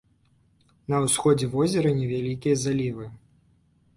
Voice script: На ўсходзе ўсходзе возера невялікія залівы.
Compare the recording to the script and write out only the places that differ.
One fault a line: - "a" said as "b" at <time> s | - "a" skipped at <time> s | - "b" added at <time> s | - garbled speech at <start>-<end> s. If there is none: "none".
- "ўсходзе" skipped at 1.5 s